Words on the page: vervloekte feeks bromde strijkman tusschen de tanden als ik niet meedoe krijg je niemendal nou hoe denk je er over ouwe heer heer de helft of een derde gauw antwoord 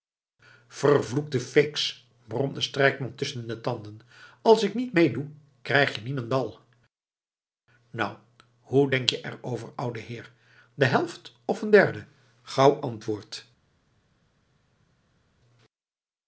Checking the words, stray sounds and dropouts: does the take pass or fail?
fail